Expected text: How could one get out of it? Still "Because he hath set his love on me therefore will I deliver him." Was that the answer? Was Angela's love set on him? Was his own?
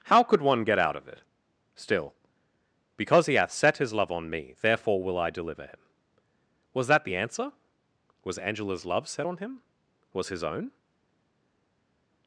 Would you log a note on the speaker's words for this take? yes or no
no